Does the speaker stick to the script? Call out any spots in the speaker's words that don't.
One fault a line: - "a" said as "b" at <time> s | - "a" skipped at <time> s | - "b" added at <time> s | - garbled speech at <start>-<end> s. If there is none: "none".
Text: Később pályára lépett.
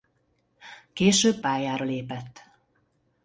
none